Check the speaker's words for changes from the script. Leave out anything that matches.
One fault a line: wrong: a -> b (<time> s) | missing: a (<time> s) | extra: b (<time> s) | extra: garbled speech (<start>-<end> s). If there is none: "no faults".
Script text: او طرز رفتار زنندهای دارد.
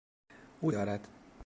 missing: طرز رفتار زنندهای (0.7 s)